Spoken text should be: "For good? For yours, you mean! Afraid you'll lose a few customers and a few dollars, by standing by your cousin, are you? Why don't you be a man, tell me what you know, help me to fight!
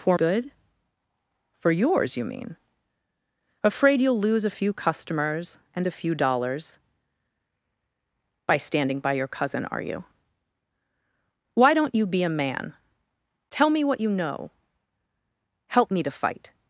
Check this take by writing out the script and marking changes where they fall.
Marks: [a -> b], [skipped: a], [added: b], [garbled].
"For good? For yours, you mean! Afraid you'll lose a few customers and a few dollars, by standing by your cousin, are you? Why don't you be a man, tell me what you know, help me to fight!